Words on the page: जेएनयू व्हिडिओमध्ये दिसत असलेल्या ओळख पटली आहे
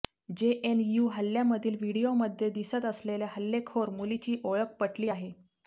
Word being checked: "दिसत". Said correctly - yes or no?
yes